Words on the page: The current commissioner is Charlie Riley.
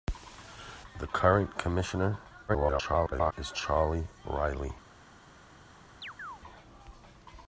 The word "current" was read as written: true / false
true